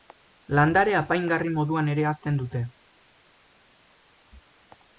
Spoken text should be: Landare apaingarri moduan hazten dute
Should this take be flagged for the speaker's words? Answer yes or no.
yes